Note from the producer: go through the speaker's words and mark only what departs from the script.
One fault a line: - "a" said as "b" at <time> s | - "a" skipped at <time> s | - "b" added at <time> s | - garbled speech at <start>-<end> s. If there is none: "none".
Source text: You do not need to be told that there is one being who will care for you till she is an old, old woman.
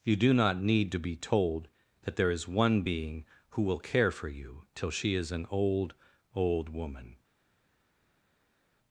none